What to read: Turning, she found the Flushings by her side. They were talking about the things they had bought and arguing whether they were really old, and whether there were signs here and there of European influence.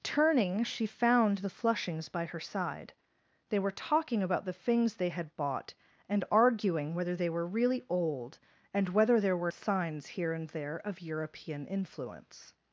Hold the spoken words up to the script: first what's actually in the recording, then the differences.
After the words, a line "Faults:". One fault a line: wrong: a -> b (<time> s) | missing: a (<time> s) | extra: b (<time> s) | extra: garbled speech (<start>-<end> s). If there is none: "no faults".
Turning, she found the Flushings by her side. They were talking about the things they had bought and arguing whether they were really old, and whether there were signs here and there of European influence.
Faults:
no faults